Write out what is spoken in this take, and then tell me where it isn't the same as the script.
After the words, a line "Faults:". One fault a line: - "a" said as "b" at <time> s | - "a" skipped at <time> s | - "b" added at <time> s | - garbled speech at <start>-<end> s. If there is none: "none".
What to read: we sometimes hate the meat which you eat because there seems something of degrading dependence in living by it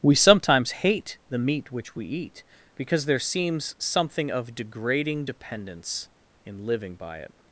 we sometimes hate the meat which we eat because there seems something of degrading dependence in living by it
Faults:
- "you" said as "we" at 1.9 s